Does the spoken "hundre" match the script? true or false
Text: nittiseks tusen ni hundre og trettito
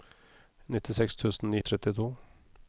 false